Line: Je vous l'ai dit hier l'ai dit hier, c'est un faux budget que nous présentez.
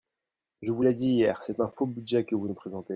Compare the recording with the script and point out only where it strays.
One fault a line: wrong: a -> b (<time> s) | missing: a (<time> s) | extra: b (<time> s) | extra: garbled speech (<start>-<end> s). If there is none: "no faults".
missing: l'ai dit hier (1.4 s)
extra: vous (2.3 s)